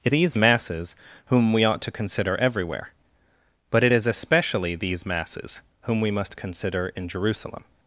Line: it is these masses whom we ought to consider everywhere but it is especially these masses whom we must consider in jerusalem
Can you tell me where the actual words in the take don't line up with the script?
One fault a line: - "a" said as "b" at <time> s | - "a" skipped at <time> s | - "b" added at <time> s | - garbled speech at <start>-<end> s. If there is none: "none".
- "is" skipped at 0.1 s